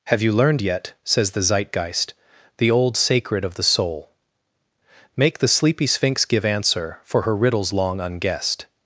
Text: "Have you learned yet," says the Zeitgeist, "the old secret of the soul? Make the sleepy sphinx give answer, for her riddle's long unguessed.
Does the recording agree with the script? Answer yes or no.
no